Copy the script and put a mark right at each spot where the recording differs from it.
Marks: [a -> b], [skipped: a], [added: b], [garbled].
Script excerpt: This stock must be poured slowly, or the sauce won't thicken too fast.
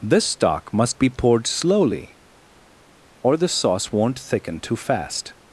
This stock must be poured slowly, or the sauce won't thicken too fast.